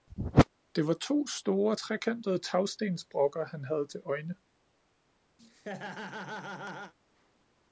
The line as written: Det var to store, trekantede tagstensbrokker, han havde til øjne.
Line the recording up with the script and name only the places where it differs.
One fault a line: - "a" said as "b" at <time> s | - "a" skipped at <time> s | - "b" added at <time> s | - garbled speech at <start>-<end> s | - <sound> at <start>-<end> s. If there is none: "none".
- laugh at 5.4-6.9 s